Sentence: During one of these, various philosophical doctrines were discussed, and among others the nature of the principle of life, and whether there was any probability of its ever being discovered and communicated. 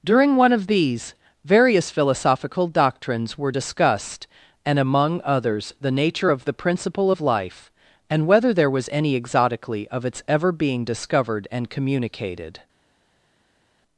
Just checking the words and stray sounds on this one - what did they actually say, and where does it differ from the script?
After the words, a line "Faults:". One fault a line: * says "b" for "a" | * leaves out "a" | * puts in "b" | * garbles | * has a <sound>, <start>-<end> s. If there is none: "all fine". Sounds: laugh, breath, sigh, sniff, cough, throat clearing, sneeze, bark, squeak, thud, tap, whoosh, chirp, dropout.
During one of these, various philosophical doctrines were discussed, and among others the nature of the principle of life, and whether there was any exotically of its ever being discovered and communicated.
Faults:
* says "exotically" for "probability"